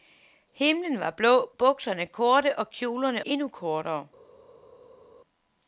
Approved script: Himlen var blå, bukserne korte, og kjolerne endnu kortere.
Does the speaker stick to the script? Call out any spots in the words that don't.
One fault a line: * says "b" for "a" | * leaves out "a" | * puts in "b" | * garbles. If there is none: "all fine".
all fine